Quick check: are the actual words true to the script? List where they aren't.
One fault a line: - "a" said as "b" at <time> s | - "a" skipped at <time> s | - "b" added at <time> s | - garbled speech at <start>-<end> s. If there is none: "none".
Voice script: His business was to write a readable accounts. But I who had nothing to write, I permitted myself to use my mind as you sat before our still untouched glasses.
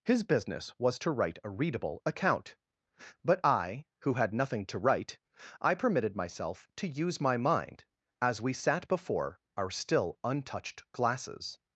- "accounts" said as "account" at 2.1 s
- "you" said as "we" at 8.4 s